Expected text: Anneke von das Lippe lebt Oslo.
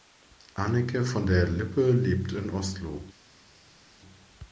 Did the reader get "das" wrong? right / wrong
wrong